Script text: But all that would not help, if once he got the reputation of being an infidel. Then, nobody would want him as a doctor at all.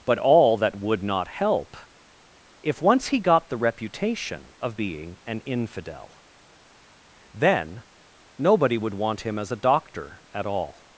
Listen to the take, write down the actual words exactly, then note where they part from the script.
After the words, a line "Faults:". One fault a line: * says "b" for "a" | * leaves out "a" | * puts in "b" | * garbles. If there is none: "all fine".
But all that would not help, if once he got the reputation of being an infidel. Then, nobody would want him as a doctor at all.
Faults:
all fine